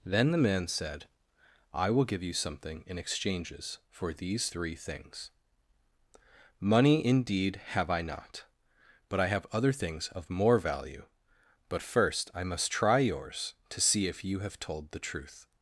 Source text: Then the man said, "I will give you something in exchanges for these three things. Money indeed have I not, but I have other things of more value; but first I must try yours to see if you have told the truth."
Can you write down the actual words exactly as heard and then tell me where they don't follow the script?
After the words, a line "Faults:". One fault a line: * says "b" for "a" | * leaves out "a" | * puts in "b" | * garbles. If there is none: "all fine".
Then the man said, "I will give you something in exchanges for these three things. Money indeed have I not, but I have other things of more value; but first I must try yours to see if you have told the truth."
Faults:
all fine